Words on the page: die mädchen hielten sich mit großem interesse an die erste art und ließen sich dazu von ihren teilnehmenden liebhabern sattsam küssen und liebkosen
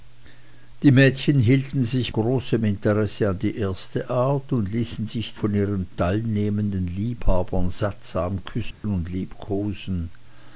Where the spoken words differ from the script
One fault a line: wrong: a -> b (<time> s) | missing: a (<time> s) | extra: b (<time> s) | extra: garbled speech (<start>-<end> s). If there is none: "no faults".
missing: mit (2.1 s)
missing: dazu (5.3 s)